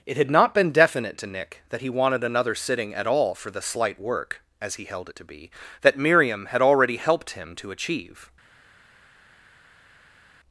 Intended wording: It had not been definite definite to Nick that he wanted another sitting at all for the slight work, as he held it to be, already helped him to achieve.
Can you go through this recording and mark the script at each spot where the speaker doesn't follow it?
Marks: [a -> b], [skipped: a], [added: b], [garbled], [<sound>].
It had not been definite [skipped: definite] to Nick that he wanted another sitting at all for the slight work, as he held it to be, [added: that Miriam had] already helped him to achieve.